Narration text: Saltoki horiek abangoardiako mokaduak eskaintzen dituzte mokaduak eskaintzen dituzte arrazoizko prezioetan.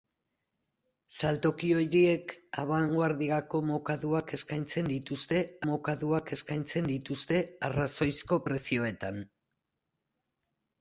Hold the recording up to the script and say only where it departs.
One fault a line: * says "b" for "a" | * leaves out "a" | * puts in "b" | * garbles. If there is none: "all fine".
all fine